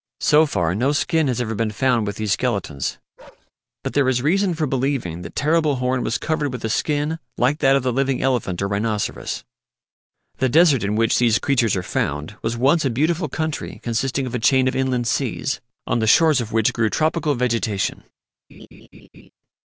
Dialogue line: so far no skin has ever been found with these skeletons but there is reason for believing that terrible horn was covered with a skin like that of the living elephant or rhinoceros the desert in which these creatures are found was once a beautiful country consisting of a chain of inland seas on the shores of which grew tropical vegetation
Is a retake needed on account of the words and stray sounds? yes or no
yes